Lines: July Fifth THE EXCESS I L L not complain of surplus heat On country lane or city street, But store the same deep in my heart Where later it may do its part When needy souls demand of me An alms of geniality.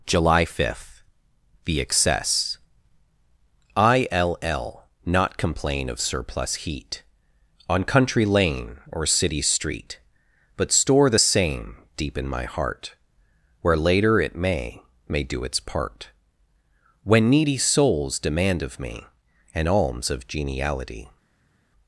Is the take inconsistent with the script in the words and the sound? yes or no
yes